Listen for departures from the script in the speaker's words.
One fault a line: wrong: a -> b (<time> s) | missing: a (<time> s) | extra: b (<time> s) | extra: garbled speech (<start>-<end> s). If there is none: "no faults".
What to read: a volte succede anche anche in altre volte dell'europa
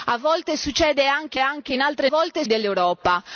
no faults